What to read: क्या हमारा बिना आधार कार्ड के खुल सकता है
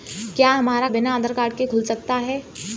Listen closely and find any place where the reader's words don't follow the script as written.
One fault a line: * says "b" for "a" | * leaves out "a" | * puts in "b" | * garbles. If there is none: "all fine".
all fine